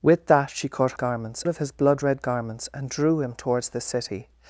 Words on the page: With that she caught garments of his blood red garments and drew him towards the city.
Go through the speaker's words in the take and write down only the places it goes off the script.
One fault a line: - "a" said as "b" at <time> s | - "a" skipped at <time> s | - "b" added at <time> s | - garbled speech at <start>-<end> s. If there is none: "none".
none